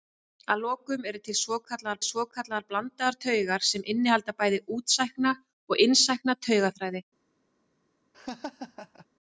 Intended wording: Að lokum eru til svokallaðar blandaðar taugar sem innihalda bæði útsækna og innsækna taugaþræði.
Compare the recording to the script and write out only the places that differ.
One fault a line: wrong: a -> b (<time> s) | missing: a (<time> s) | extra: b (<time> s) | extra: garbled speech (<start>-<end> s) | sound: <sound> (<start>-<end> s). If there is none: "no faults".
extra: svokallaðar (2.1 s)
sound: laugh (8.1-9.1 s)